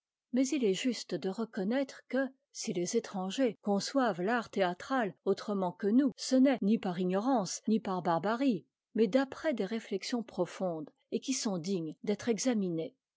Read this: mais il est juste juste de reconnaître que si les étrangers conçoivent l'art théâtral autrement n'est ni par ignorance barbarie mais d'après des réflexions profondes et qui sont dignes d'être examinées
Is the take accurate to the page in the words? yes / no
no